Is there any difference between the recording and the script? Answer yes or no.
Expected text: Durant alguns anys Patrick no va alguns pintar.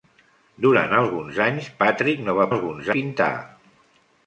no